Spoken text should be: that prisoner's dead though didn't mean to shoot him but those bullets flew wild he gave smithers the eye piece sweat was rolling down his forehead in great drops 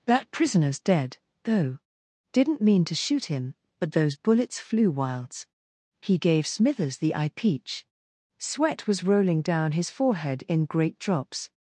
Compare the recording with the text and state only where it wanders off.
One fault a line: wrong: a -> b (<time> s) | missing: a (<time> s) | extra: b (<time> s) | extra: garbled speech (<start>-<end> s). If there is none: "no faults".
wrong: wild -> wilds (4.9 s)
wrong: piece -> peach (7.4 s)